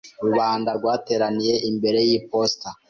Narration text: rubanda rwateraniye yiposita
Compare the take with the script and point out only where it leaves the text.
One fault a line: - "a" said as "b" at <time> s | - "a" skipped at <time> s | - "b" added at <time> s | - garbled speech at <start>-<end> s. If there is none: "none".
- "imbere" added at 1.7 s